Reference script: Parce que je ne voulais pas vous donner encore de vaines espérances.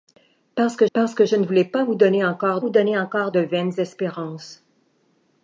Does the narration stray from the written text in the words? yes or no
yes